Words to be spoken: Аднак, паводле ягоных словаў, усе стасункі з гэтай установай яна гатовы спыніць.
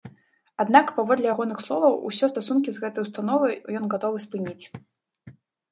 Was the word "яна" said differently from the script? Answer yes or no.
yes